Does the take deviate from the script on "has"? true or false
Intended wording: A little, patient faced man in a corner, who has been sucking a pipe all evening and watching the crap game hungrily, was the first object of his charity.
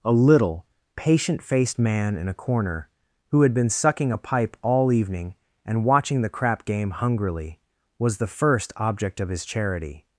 true